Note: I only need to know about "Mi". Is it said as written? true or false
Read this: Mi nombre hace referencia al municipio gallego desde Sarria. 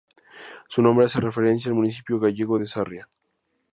false